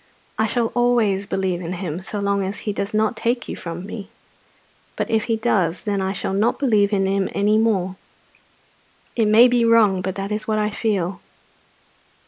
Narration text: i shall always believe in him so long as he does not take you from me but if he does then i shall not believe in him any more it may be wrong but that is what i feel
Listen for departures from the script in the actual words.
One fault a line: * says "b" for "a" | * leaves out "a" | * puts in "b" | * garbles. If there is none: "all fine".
all fine